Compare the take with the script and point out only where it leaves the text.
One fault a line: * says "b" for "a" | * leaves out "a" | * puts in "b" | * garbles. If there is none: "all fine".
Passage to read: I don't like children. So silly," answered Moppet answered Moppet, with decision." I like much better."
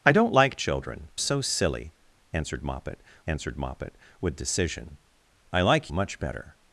all fine